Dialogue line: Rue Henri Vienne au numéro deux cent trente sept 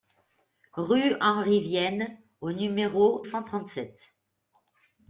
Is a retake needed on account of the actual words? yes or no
yes